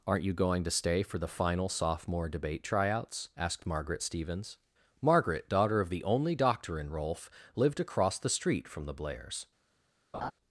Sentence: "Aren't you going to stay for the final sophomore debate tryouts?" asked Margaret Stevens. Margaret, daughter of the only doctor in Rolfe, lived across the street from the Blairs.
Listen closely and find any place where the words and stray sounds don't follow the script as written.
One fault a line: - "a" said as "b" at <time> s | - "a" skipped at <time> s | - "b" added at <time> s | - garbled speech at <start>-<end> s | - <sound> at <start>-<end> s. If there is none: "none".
- laugh at 10.1-10.3 s